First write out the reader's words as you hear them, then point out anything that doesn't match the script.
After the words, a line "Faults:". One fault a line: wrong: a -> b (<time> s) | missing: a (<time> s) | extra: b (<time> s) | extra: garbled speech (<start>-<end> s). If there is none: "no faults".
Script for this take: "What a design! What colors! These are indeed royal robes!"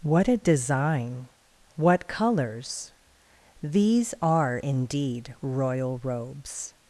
"What a design! What colors! These are indeed royal robes!"
Faults:
no faults